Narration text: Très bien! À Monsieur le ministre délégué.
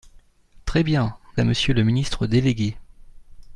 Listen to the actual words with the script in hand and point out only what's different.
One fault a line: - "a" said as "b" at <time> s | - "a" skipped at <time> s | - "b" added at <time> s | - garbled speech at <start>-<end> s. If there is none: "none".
none